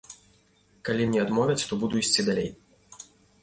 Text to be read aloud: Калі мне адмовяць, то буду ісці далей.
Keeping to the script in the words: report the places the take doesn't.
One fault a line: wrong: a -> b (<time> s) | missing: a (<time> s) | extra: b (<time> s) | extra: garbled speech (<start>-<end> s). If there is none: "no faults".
no faults